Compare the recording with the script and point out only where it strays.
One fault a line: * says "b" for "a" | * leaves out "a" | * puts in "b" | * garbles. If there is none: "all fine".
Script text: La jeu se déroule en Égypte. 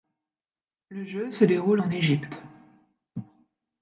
* says "Le" for "La"